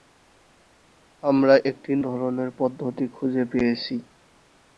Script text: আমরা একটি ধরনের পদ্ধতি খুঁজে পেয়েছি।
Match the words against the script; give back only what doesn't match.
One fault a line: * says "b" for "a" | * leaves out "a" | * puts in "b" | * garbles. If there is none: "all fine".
all fine